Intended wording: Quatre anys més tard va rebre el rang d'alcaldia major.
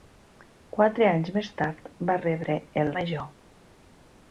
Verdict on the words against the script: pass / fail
fail